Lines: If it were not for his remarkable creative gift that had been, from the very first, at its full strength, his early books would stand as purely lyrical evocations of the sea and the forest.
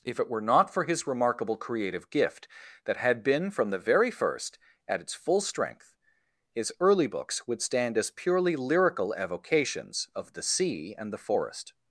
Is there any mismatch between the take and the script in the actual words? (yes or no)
no